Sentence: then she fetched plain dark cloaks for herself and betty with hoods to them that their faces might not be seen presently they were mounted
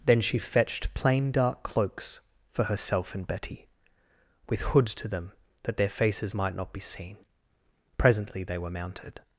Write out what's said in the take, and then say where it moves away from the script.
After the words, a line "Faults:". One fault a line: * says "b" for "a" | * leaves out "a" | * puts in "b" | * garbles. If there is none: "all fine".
then she fetched plain dark cloaks for herself and betty with hoods to them that their faces might not be seen presently they were mounted
Faults:
all fine